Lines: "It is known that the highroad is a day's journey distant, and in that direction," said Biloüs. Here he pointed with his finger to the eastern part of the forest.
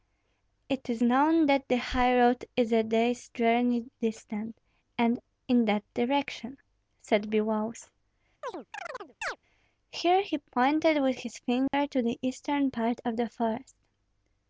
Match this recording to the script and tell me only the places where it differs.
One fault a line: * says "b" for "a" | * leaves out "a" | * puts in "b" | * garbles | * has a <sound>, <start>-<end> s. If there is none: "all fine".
* has a chirp, 8.4-9.4 s
* has a dropout, 11.7-11.7 s